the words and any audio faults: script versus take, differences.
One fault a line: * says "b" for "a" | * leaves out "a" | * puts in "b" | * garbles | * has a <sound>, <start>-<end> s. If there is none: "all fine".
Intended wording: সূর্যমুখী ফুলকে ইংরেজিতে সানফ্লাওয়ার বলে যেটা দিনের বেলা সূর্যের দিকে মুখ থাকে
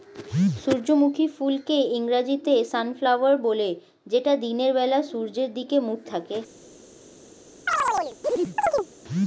* has a chirp, 7.7-8.9 s